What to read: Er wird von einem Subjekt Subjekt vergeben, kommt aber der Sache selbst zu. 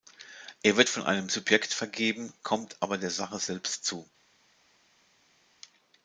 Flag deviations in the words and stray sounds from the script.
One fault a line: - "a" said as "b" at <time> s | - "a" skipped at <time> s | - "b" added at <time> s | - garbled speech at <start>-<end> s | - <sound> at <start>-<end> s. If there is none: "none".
- "Subjekt" skipped at 1.7 s